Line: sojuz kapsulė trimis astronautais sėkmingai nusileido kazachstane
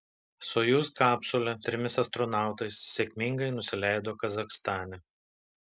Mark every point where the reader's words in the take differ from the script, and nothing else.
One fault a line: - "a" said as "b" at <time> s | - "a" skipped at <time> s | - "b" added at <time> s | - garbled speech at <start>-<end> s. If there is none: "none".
none